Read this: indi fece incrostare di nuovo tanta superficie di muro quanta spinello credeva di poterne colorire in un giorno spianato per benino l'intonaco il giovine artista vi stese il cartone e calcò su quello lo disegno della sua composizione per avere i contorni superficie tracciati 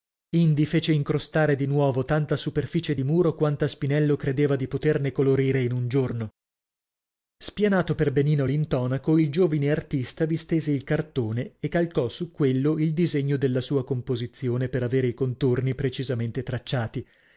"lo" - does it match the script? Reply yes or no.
no